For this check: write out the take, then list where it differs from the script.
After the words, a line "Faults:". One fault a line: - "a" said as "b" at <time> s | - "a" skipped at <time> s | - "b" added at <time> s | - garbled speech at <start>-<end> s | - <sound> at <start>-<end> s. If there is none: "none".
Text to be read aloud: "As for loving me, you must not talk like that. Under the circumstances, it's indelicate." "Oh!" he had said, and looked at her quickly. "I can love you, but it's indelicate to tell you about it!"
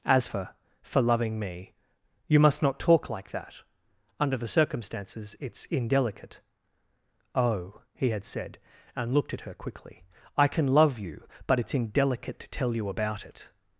"As for for loving me, you must not talk like that. Under the circumstances, it's indelicate." "Oh!" he had said, and looked at her quickly. "I can love you, but it's indelicate to tell you about it!"
Faults:
- "for" added at 0.8 s